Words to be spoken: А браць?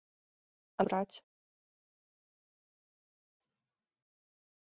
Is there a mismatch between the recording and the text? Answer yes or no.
no